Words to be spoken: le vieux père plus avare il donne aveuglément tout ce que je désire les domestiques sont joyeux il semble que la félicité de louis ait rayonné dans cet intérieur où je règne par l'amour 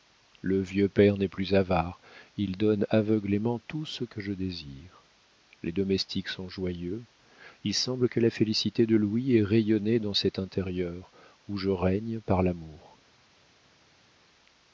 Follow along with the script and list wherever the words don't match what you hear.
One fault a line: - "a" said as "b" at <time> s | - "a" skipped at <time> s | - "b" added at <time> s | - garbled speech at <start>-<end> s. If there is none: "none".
- "n'est" added at 1.1 s